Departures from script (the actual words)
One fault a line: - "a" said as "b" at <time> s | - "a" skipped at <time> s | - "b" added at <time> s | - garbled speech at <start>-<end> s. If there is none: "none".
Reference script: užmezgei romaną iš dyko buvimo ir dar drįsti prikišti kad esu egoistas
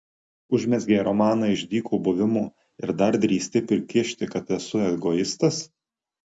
none